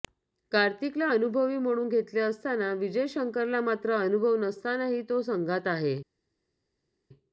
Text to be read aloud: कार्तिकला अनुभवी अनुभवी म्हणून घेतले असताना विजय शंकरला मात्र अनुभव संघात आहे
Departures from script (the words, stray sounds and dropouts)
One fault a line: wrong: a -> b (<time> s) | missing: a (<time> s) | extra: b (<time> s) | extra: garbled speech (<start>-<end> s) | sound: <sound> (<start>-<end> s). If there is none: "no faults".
missing: अनुभवी (1.6 s)
extra: नसतानाही तो (4.4 s)